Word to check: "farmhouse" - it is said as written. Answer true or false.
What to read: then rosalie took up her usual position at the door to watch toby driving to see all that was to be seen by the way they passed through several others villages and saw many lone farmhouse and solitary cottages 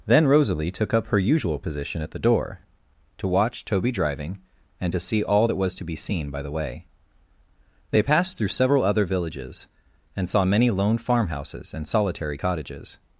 false